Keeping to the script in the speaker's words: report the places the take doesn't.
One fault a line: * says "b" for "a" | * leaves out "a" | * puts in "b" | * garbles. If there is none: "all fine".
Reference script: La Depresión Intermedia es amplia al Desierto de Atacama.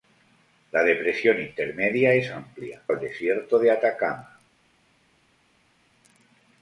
all fine